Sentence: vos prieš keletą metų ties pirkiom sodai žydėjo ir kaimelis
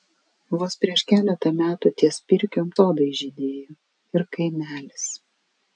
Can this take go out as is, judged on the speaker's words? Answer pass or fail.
pass